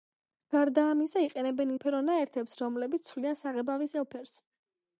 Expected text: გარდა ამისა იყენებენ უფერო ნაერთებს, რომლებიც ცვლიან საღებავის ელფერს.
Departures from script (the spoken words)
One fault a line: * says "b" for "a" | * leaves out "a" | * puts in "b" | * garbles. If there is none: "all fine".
all fine